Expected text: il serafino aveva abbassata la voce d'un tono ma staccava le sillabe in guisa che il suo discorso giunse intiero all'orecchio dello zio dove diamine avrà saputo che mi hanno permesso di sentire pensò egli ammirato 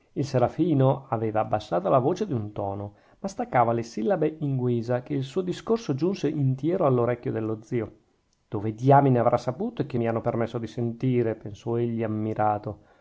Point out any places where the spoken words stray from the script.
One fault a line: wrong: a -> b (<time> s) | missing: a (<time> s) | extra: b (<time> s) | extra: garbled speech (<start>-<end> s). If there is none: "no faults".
no faults